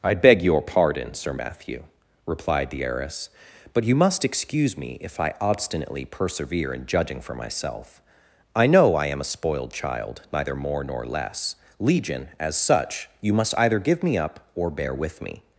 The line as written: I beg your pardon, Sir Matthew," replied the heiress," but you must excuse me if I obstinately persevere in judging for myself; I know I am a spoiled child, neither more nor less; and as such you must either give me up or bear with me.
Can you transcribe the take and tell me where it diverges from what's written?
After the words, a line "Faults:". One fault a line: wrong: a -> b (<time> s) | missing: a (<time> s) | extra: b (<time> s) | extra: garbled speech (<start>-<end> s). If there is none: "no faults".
I beg your pardon, Sir Matthew," replied the heiress," but you must excuse me if I obstinately persevere in judging for myself; I know I am a spoiled child, neither more nor less; legion as such you must either give me up or bear with me.
Faults:
wrong: and -> legion (11.8 s)